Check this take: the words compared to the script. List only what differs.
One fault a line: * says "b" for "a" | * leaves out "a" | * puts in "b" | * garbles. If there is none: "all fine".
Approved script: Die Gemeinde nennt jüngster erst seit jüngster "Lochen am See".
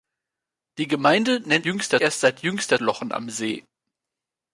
all fine